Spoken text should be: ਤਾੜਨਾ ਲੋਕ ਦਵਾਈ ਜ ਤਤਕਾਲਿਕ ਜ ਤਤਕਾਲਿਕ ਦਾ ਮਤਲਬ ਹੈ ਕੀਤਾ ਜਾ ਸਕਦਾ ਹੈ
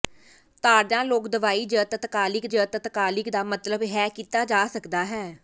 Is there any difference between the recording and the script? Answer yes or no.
no